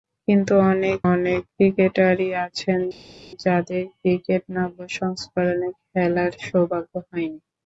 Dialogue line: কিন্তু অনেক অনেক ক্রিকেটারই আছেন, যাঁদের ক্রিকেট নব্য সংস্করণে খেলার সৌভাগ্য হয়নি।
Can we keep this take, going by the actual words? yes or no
yes